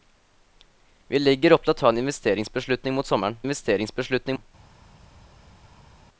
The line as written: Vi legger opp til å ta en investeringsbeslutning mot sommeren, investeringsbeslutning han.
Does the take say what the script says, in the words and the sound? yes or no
yes